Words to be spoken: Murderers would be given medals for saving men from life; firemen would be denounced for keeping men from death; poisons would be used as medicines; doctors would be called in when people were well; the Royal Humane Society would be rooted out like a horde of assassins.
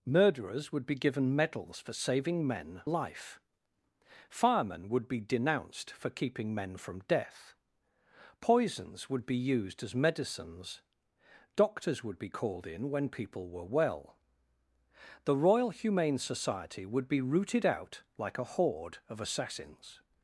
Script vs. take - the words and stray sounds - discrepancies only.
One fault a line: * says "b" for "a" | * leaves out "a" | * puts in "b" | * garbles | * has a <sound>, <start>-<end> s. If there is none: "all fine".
* leaves out "from"